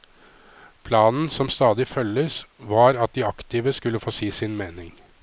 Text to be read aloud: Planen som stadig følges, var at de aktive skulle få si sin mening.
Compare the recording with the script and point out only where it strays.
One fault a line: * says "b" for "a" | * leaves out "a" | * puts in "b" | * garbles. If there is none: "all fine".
all fine